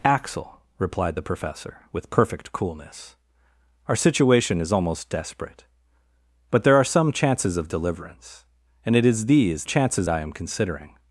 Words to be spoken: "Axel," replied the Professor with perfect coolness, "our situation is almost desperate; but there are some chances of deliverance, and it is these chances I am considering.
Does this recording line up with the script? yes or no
yes